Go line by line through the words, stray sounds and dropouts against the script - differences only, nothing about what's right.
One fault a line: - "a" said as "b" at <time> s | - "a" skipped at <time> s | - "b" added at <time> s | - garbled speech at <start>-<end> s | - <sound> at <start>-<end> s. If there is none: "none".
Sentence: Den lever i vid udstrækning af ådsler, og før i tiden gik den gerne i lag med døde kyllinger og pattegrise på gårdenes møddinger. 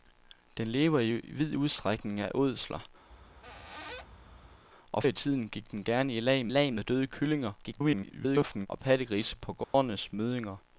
- squeak at 3.1-4.6 s
- "før" skipped at 5.0 s
- "lag" added at 6.5 s
- garbled speech at 7.6-8.7 s
- dropout at 9.6-9.7 s